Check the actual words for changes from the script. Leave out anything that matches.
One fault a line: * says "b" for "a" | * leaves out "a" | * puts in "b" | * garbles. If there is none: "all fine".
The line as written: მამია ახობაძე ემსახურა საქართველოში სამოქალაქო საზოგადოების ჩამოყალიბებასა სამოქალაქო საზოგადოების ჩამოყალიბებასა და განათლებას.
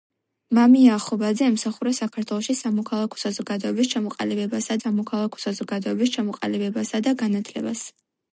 all fine